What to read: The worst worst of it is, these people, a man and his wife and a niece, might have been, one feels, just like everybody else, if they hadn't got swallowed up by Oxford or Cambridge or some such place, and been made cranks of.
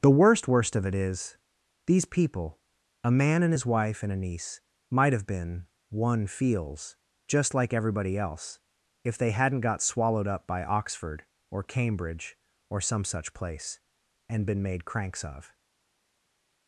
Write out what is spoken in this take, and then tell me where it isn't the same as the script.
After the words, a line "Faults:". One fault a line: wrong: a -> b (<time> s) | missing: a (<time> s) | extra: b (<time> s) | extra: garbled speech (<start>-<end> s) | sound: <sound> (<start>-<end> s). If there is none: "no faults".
The worst worst of it is, these people, a man and his wife and a niece, might have been, one feels, just like everybody else, if they hadn't got swallowed up by Oxford or Cambridge or some such place, and been made cranks of.
Faults:
no faults